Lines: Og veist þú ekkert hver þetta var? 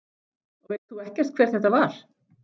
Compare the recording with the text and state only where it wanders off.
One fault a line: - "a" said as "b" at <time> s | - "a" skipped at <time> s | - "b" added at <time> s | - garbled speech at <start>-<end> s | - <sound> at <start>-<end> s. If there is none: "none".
none